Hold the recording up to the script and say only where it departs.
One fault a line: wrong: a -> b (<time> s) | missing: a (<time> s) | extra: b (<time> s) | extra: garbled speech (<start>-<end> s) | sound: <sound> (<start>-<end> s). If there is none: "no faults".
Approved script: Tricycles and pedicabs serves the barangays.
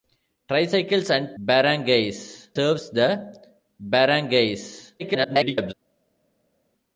wrong: pedicabs -> barangays (1.4 s)
extra: garbled speech (5.0-5.7 s)